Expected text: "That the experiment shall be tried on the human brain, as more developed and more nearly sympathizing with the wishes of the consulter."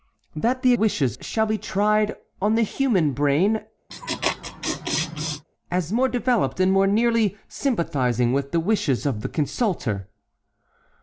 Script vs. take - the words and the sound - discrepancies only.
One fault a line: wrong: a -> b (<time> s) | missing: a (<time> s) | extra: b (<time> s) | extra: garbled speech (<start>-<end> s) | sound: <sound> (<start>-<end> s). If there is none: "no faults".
wrong: experiment -> wishes (0.7 s)
sound: laugh (3.9-5.4 s)